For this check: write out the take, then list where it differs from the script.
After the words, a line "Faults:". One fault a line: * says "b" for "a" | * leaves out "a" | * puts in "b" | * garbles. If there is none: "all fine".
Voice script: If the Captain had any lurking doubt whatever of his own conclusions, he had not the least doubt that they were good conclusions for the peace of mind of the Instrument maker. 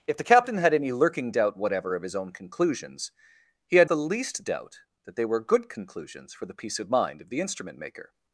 If the Captain had any lurking doubt whatever of his own conclusions, he had the least doubt that they were good conclusions for the peace of mind of the Instrument maker.
Faults:
* leaves out "not"